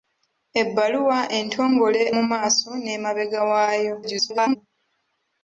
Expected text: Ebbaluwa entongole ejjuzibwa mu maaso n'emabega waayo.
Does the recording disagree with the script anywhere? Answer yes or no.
yes